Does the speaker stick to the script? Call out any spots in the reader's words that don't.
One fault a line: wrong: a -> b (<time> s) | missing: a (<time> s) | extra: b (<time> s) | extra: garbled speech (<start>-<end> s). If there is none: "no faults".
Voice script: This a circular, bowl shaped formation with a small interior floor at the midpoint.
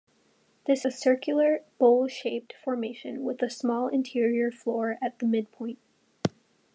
no faults